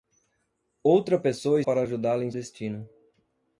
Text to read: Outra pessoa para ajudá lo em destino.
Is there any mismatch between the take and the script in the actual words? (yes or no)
no